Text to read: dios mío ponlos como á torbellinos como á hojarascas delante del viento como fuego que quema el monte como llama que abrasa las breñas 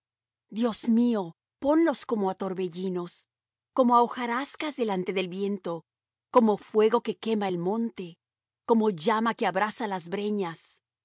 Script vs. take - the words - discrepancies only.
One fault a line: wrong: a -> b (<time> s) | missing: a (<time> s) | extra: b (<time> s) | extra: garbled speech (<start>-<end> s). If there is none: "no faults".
no faults